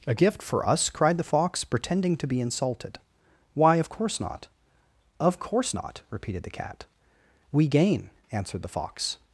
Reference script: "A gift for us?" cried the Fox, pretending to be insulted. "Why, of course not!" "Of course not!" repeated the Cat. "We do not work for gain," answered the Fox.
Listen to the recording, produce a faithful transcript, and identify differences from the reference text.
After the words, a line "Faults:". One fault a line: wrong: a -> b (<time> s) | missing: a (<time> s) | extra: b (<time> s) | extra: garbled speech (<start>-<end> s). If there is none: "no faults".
"A gift for us?" cried the Fox, pretending to be insulted. "Why, of course not!" "Of course not!" repeated the Cat. "We gain," answered the Fox.
Faults:
missing: do not work for (7.7 s)